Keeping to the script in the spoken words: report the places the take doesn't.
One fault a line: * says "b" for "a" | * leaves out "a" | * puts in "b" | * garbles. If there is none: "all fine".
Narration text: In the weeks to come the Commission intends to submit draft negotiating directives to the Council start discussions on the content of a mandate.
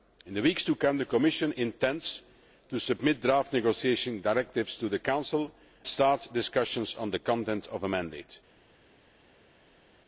all fine